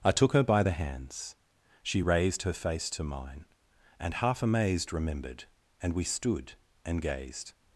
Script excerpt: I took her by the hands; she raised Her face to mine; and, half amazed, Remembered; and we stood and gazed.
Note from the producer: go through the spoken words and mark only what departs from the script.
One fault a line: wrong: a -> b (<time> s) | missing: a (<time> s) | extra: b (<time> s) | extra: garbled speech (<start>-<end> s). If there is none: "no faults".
no faults